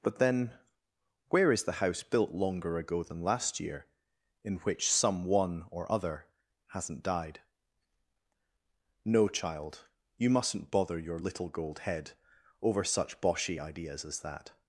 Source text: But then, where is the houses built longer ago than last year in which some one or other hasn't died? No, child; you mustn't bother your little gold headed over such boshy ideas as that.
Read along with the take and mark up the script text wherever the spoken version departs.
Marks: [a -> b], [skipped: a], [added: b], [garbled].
But then, where is the [houses -> house] built longer ago than last year in which some one or other hasn't died? No, child; you mustn't bother your little gold [headed -> head] over such boshy ideas as that.